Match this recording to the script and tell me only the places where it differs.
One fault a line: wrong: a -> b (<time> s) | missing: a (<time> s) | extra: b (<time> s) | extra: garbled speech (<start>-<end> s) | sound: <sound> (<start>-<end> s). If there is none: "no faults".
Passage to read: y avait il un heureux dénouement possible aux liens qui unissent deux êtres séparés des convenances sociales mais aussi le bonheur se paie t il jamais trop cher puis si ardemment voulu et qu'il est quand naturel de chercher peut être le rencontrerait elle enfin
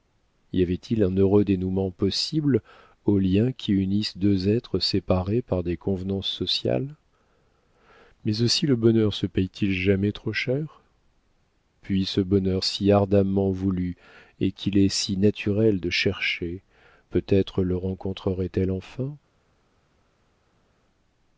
extra: par (5.4 s)
extra: ce bonheur (12.1 s)
wrong: quand -> si (14.9 s)